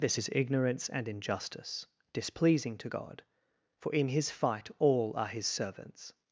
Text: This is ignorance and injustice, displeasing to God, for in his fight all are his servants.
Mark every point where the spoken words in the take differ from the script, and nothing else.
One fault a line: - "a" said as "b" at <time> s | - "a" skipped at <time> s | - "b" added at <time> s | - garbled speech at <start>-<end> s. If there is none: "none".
none